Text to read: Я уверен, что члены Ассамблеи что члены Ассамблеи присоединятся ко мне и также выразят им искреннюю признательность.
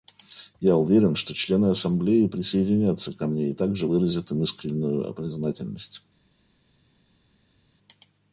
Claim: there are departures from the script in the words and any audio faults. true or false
true